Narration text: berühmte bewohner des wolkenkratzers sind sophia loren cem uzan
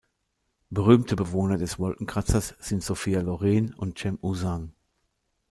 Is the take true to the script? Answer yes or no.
no